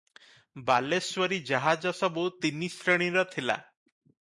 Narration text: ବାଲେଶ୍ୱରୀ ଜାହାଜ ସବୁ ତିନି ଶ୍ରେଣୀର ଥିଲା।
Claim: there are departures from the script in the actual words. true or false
false